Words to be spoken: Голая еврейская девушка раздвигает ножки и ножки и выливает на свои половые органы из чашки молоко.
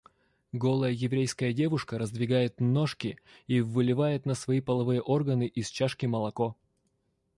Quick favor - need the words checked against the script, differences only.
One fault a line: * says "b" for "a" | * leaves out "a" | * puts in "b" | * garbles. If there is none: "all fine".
* leaves out "ножки и"